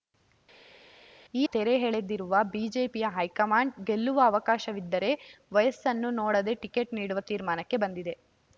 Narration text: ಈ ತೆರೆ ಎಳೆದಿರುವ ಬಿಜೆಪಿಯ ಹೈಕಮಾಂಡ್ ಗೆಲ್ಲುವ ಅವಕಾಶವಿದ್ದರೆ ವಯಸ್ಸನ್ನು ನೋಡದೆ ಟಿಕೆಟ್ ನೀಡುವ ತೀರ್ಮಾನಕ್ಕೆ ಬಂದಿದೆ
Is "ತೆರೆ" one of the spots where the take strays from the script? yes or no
no